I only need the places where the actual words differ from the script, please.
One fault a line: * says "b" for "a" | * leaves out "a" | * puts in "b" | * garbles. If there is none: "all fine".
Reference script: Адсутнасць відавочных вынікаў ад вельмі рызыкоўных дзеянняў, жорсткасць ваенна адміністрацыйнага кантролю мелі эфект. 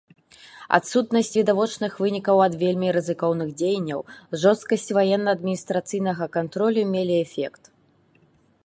all fine